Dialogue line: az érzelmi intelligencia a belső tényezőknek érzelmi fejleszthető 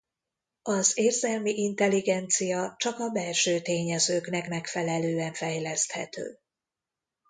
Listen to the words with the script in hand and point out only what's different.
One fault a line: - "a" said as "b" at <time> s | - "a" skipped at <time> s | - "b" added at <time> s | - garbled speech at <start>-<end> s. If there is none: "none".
- "csak" added at 2.8 s
- "érzelmi" said as "megfelelően" at 4.5 s